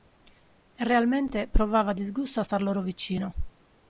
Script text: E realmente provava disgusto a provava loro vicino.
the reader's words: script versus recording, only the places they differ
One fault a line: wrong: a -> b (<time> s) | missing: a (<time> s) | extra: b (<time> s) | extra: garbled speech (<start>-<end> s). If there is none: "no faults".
wrong: provava -> star (2.4 s)